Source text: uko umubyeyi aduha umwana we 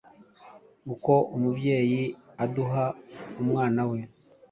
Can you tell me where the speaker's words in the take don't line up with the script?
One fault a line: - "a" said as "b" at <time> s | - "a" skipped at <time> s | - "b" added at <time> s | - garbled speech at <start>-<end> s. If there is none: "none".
none